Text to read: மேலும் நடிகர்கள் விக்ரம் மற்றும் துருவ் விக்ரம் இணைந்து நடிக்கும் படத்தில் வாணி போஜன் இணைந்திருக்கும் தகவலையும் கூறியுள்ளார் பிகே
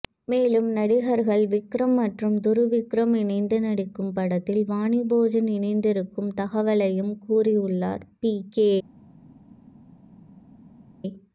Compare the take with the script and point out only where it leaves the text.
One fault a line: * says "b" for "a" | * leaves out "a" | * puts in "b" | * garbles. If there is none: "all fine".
all fine